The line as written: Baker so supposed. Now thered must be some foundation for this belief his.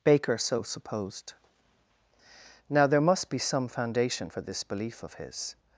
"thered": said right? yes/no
no